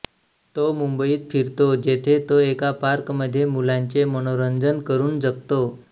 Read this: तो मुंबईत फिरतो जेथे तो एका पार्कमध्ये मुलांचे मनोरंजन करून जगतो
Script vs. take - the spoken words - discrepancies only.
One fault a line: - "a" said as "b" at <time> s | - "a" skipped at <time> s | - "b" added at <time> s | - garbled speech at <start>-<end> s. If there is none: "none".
none